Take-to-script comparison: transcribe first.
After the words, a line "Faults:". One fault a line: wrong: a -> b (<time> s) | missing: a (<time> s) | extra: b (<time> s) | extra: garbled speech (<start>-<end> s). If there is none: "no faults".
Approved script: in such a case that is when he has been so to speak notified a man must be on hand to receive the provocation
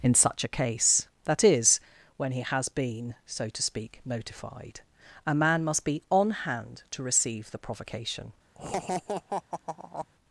in such a case that is when he has been so to speak notified a man must be on hand to receive the provocation
Faults:
no faults